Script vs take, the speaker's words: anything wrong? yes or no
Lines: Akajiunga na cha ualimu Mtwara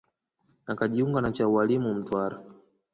no